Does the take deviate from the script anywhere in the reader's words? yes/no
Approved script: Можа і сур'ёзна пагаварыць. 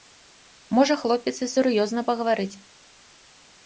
yes